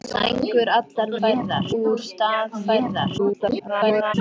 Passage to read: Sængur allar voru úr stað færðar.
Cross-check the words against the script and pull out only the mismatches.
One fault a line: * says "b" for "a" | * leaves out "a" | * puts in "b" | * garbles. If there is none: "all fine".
* says "færðar" for "voru"
* garbles